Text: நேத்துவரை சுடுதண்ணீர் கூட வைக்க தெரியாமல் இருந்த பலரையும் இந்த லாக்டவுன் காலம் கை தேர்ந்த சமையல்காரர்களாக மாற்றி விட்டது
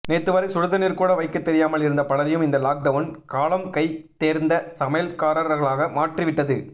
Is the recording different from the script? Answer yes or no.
no